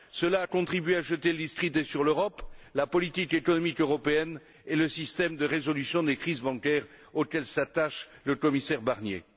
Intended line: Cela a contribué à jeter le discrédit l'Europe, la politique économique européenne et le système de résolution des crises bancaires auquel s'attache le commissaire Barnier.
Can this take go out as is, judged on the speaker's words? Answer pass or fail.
fail